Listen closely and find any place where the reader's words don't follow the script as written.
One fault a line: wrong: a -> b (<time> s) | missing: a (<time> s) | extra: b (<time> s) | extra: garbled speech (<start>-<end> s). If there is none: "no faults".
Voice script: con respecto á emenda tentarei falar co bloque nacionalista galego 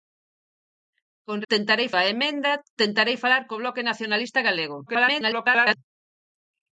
wrong: respecto -> tentarei (1.5 s)
extra: garbled speech (4.9-5.8 s)